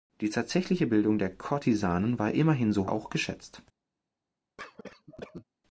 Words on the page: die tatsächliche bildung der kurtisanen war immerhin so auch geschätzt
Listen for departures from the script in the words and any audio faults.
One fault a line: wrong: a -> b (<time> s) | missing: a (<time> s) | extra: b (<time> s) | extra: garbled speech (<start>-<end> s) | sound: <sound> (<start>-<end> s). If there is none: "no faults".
sound: cough (4.6-5.4 s)